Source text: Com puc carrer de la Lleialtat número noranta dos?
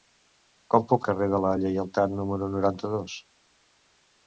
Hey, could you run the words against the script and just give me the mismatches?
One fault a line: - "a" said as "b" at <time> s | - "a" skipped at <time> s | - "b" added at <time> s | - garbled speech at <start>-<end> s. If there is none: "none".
none